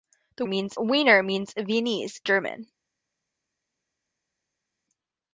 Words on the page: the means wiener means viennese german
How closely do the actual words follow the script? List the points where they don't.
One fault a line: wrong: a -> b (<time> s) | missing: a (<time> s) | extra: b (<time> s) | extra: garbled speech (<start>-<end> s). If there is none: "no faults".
no faults